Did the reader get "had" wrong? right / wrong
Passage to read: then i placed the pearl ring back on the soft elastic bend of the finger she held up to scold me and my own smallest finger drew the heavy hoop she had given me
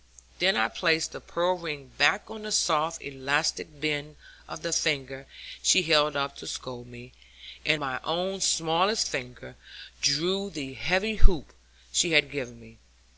right